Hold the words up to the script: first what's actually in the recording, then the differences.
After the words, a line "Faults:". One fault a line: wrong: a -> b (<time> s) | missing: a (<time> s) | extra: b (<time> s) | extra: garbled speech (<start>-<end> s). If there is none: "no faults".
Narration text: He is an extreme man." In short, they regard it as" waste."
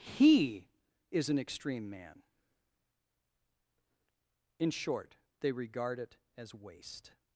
He is an extreme man." In short, they regard it as" waste."
Faults:
no faults